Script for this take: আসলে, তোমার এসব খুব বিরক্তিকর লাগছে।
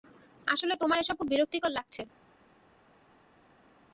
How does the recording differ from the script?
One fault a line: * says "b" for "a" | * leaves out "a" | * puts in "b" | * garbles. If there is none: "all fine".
all fine